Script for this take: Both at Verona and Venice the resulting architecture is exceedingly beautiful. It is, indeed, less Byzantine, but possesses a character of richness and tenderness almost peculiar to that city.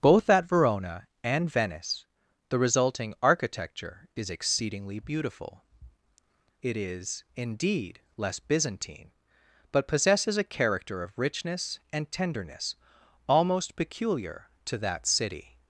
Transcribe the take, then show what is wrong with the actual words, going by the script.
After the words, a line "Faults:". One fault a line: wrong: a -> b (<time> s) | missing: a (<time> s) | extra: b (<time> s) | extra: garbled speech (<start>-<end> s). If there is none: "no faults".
Both at Verona and Venice the resulting architecture is exceedingly beautiful. It is, indeed, less Byzantine, but possesses a character of richness and tenderness almost peculiar to that city.
Faults:
no faults